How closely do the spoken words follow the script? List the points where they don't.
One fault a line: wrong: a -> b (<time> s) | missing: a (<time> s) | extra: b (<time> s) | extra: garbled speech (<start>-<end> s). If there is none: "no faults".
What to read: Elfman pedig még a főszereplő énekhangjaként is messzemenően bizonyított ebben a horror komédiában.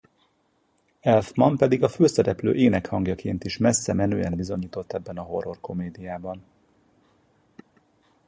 missing: még (1.8 s)